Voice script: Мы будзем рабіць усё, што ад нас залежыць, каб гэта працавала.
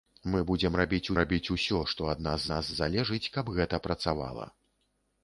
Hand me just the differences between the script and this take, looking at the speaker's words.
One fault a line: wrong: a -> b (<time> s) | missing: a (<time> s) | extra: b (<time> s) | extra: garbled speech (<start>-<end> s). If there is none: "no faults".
extra: рабіць (1.2 s)
extra: нас (2.5 s)